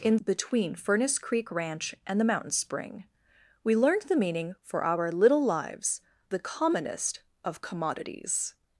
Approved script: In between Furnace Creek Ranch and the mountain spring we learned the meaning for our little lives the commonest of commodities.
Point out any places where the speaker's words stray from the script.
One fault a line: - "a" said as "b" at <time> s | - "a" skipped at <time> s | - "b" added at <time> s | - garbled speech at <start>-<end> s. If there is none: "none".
none